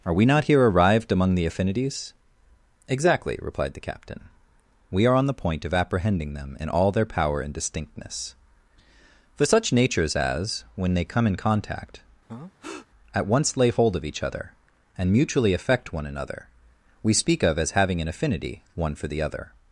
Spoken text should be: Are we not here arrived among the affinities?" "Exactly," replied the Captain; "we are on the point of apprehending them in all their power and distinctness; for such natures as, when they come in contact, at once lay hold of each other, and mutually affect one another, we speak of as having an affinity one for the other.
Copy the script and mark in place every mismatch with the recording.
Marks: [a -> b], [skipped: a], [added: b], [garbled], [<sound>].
Are we not here arrived among the affinities?" "Exactly," replied the Captain; "we are on the point of apprehending them in all their power and distinctness; for such natures as, when they come in contact, [breath] at once lay hold of each other, and mutually affect one another, we speak of as having an affinity one for the other.